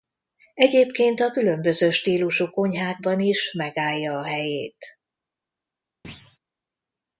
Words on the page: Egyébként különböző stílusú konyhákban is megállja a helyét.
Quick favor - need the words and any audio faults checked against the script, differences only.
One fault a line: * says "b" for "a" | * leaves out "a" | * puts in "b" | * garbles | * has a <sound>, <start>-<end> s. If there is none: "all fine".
* puts in "a"
* has a thud, 6.0-6.4 s